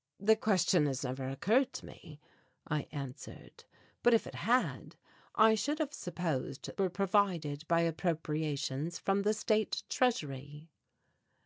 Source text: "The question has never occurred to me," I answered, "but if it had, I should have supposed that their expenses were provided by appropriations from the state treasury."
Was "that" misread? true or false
true